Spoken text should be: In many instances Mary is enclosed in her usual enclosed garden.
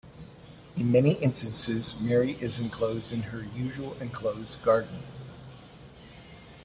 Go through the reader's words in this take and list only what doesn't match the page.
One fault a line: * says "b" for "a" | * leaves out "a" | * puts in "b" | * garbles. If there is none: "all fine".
all fine